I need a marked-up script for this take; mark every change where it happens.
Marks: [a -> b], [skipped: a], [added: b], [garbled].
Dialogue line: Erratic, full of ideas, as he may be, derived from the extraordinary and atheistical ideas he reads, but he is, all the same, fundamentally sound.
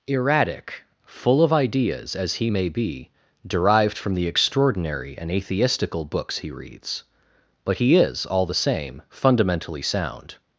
Erratic, full of ideas, as he may be, derived from the extraordinary and atheistical [ideas -> books] he reads, but he is, all the same, fundamentally sound.